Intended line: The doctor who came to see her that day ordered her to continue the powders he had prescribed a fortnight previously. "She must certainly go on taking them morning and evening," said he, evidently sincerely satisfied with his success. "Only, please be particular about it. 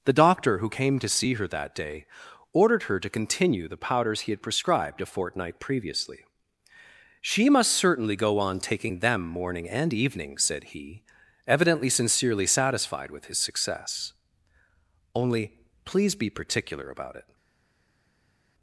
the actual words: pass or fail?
pass